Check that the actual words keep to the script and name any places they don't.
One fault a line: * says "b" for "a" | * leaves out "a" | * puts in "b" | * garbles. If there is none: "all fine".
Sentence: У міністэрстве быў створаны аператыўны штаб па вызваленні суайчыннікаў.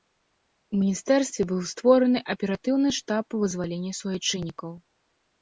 all fine